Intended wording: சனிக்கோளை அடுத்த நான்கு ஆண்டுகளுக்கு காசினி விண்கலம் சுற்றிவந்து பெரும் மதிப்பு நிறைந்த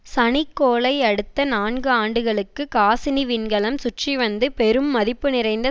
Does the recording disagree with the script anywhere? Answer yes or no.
no